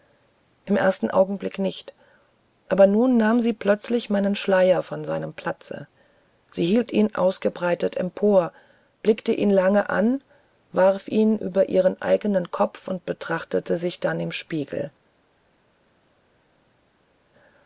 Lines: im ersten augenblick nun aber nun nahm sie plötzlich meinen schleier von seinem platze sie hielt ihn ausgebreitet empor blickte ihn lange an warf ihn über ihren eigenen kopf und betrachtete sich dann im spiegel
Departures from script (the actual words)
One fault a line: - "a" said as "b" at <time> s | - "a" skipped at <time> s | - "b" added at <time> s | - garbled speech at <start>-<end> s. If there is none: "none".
- "nun" said as "nicht" at 1.6 s